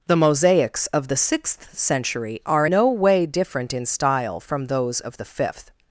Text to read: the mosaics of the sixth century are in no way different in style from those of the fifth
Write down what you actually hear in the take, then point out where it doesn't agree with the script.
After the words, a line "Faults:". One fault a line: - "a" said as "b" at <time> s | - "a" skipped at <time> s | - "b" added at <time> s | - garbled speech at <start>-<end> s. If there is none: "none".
the mosaics of the sixth century are no way different in style from those of the fifth
Faults:
- "in" skipped at 2.7 s